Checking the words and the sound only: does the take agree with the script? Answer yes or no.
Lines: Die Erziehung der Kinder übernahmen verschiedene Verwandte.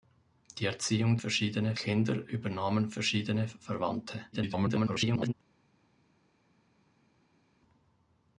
no